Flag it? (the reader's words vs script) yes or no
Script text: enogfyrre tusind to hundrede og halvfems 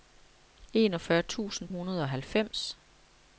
yes